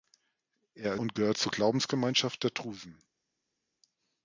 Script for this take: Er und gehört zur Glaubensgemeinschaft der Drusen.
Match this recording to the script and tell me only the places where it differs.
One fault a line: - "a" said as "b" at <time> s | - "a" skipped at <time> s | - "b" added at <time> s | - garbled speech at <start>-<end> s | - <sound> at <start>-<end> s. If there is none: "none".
none